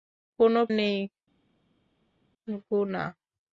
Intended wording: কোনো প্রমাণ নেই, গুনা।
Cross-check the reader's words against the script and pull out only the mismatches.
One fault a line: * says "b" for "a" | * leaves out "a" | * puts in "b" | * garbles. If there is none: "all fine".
* leaves out "প্রমাণ"